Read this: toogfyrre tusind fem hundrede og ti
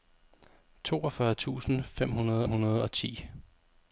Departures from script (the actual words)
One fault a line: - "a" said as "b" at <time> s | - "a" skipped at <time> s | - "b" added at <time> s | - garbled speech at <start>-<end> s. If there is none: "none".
- "hundrede" added at 2.4 s